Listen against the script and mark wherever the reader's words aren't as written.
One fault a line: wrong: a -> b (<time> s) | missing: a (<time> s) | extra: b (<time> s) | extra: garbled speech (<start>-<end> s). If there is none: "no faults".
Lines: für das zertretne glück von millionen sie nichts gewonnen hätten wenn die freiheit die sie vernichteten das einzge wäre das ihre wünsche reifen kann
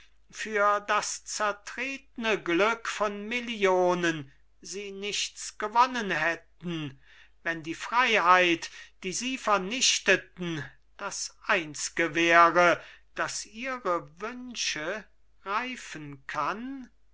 no faults